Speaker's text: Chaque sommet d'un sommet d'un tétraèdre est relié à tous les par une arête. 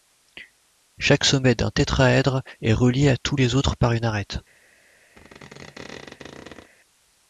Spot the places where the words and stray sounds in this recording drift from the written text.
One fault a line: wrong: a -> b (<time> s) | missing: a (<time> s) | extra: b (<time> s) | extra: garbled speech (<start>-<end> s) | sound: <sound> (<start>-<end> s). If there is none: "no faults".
missing: sommet d'un (1.7 s)
extra: autres (3.5 s)
sound: squeak (5.2-6.7 s)